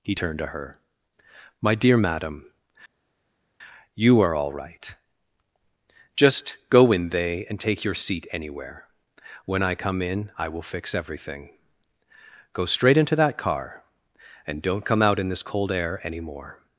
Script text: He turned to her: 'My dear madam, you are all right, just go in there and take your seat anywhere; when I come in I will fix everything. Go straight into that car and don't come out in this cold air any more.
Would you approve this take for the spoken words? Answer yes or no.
no